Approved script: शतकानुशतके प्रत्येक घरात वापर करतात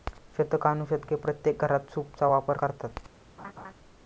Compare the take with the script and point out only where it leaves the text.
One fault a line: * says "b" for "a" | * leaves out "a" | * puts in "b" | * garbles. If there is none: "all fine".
* puts in "सूपचा"